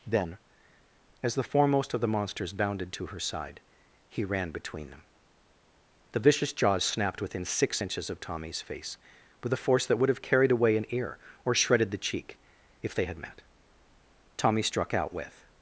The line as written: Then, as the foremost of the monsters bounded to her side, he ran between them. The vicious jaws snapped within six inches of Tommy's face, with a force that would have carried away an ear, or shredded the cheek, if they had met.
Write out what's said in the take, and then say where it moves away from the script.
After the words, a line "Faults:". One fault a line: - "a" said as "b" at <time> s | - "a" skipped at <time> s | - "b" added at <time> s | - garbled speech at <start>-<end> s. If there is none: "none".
Then, as the foremost of the monsters bounded to her side, he ran between them. The vicious jaws snapped within six inches of Tommy's face, with a force that would have carried away an ear, or shredded the cheek, if they had met. Tommy struck out with
Faults:
- "Tommy struck out with" added at 14.4 s